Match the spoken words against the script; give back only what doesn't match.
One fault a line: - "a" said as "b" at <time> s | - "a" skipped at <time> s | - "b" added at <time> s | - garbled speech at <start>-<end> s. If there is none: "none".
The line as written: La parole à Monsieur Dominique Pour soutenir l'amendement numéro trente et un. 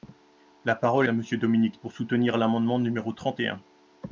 none